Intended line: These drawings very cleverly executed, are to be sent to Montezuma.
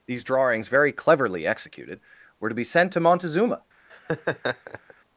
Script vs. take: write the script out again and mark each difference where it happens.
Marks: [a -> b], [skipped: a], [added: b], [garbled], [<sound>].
These drawings very cleverly executed, [are -> were] to be sent to Montezuma. [laugh]